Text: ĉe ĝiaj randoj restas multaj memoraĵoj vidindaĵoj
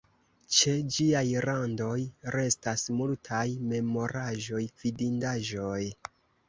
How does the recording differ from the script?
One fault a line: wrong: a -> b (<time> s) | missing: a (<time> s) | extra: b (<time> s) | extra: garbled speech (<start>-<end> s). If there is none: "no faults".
no faults